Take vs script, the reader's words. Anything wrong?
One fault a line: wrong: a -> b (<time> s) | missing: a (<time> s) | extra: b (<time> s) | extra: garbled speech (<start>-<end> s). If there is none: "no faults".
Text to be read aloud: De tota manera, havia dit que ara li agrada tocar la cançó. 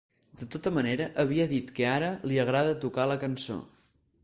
no faults